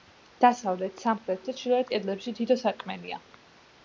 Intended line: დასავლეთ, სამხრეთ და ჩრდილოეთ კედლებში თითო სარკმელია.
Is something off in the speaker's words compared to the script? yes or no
no